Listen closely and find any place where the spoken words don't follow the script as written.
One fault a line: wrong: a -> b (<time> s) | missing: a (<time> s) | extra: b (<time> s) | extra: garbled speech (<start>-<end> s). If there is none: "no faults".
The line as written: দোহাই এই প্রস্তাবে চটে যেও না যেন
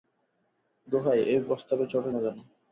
missing: যেও (2.1 s)